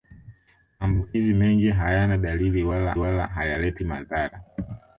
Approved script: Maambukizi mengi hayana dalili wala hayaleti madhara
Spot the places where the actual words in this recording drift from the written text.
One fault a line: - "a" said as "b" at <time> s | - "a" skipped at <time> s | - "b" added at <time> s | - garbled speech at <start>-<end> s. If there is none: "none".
- "wala" added at 3.0 s